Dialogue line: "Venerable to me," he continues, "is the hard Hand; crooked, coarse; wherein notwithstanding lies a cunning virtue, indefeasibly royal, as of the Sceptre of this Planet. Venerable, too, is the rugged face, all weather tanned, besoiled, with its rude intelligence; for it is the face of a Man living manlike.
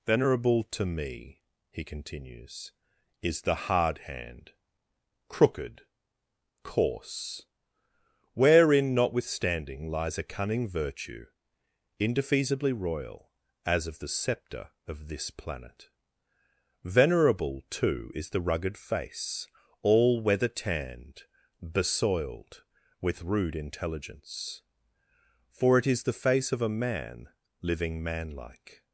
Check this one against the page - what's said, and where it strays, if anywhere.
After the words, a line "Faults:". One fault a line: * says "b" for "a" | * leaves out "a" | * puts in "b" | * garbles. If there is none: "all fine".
"Venerable to me," he continues, "is the hard Hand; crooked, coarse; wherein notwithstanding lies a cunning virtue, indefeasibly royal, as of the Sceptre of this Planet. Venerable, too, is the rugged face, all weather tanned, besoiled, with rude intelligence; for it is the face of a Man living manlike.
Faults:
* leaves out "its"